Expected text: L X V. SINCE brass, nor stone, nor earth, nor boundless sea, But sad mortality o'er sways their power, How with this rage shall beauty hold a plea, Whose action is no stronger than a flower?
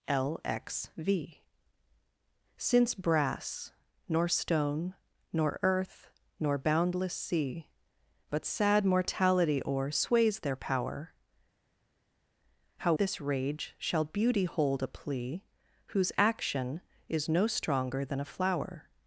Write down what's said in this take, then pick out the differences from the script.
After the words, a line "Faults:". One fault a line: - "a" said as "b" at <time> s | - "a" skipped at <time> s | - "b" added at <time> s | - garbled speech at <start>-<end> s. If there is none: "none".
L X V. SINCE brass, nor stone, nor earth, nor boundless sea, But sad mortality o'er sways their power, How this rage shall beauty hold a plea, Whose action is no stronger than a flower?
Faults:
- "with" skipped at 12.9 s